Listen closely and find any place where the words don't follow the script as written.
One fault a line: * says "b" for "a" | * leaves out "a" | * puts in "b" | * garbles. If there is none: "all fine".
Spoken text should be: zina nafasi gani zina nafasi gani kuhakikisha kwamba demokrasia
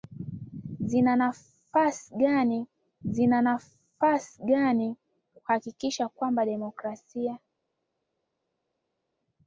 all fine